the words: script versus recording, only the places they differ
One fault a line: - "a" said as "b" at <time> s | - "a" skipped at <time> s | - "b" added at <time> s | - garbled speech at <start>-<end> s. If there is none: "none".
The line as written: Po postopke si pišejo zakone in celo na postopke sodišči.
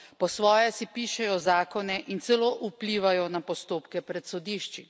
- "postopke" said as "svoje" at 0.3 s
- "vplivajo" added at 2.6 s
- "pred" added at 4.0 s